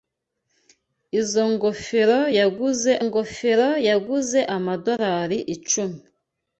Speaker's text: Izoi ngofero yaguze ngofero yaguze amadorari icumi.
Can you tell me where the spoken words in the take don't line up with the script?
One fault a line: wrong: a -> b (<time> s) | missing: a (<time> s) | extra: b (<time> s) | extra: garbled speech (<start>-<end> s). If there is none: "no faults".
no faults